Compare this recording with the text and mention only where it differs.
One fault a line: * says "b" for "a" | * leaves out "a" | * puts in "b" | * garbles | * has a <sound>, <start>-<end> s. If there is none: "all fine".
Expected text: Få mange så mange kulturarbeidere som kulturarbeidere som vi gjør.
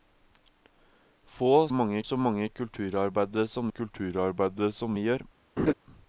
* has a laugh, 5.6-5.7 s